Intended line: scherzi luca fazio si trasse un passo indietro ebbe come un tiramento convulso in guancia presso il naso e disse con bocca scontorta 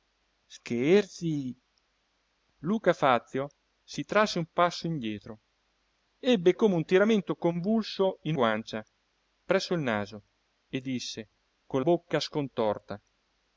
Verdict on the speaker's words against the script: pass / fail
pass